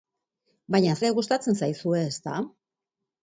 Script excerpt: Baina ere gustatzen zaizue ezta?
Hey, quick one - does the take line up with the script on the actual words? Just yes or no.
yes